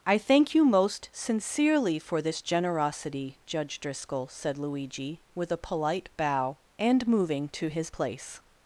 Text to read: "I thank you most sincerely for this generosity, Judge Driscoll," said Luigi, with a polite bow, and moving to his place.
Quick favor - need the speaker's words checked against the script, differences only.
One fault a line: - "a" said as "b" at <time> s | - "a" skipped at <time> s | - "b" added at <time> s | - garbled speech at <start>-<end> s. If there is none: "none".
none